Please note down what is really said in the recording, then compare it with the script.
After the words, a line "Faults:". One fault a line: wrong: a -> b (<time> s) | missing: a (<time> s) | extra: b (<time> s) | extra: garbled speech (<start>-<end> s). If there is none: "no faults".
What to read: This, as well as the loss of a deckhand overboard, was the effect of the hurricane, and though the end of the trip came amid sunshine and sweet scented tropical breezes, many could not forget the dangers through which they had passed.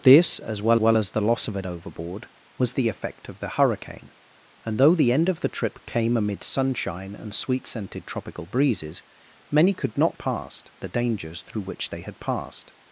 This, as well well as the loss of a overboard, was the effect of the hurricane, and though the end of the trip came amid sunshine and sweet scented tropical breezes, many could not passed the dangers through which they had passed.
Faults:
extra: well (0.8 s)
missing: deckhand (1.6 s)
wrong: forget -> passed (10.2 s)